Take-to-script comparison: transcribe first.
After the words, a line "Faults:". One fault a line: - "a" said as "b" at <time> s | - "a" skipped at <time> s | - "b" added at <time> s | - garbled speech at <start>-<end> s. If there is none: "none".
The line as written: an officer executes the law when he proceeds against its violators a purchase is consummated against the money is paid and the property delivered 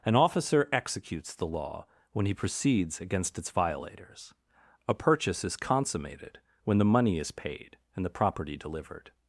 an officer executes the law when he proceeds against its violators a purchase is consummated when the money is paid and the property delivered
Faults:
- "against" said as "when" at 6.6 s